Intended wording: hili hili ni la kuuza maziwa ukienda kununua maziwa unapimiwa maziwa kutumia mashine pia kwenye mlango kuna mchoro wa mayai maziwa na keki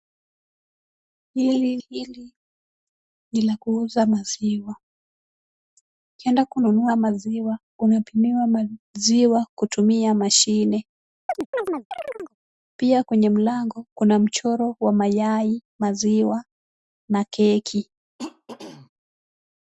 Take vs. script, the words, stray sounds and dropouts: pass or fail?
fail